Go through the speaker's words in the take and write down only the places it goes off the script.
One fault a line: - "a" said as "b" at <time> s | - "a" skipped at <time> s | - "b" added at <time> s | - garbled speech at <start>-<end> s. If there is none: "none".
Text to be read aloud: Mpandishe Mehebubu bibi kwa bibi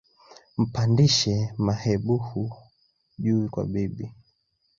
- "bibi" said as "juu" at 3.2 s